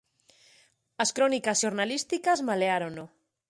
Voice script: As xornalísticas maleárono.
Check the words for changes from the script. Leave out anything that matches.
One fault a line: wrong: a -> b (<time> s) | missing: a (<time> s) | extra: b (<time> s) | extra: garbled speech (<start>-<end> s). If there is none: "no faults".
extra: crónicas (1.1 s)